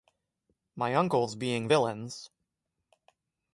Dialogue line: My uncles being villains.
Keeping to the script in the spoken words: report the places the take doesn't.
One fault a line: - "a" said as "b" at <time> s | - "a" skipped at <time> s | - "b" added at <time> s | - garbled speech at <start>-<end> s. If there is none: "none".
none